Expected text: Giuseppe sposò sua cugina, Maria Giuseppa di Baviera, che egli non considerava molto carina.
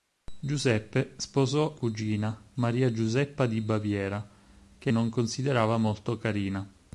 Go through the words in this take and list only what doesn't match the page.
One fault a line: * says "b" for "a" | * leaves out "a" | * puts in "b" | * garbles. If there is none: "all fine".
* leaves out "sua"
* leaves out "egli"